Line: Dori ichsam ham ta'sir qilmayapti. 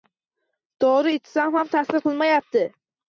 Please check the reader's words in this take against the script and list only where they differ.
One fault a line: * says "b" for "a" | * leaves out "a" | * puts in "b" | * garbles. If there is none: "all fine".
all fine